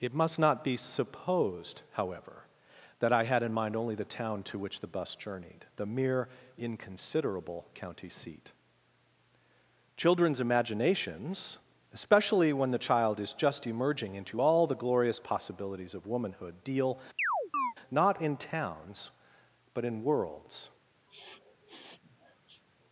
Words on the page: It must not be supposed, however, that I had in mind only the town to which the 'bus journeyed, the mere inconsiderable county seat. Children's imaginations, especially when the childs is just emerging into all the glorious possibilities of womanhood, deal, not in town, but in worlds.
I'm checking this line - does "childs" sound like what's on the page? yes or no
no